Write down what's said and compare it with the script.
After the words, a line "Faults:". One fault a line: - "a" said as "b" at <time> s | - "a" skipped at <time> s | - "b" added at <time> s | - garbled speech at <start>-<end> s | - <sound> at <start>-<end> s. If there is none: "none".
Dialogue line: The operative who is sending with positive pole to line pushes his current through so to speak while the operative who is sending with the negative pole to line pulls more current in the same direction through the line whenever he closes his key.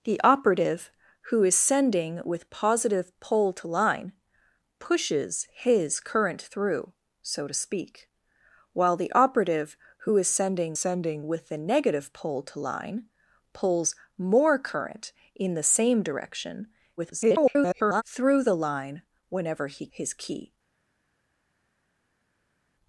The operative who is sending with positive pole to line pushes his current through so to speak while the operative who is sending sending with the negative pole to line pulls more current in the same direction [garbled] through the line whenever he his key.
Faults:
- "sending" added at 10.7 s
- garbled speech at 17.0-18.0 s
- "closes" skipped at 19.9 s